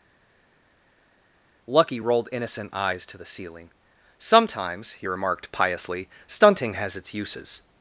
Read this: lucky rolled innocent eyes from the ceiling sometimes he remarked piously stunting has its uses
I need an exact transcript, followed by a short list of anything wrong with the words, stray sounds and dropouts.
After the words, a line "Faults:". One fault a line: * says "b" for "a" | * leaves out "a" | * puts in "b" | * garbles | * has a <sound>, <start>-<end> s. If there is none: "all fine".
lucky rolled innocent eyes to the ceiling sometimes he remarked piously stunting has its uses
Faults:
* says "to" for "from"